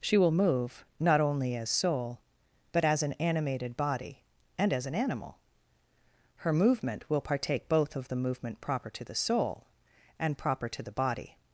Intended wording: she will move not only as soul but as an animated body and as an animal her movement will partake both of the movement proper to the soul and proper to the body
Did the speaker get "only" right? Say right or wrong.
right